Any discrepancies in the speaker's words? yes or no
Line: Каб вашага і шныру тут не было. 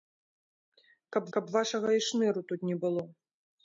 yes